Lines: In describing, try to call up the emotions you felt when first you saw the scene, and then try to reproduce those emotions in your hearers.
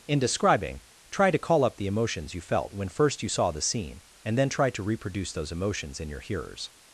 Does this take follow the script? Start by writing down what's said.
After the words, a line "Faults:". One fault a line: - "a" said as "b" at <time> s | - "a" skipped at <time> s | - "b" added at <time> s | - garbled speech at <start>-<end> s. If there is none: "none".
In describing, try to call up the emotions you felt when first you saw the scene, and then try to reproduce those emotions in your hearers.
Faults:
none